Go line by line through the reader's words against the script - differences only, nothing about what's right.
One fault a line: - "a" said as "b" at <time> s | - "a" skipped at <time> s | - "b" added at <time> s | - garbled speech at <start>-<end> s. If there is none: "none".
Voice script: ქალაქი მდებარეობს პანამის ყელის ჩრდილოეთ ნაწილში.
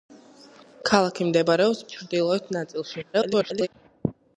- "პანამის ყელის" skipped at 1.8 s
- garbled speech at 3.1-3.7 s